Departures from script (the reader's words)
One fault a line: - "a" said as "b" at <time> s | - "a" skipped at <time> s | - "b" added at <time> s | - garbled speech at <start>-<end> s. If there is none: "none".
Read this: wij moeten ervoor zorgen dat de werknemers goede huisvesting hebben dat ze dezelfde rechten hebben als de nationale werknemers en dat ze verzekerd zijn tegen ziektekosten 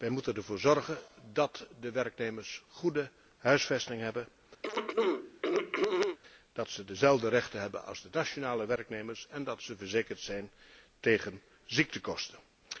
none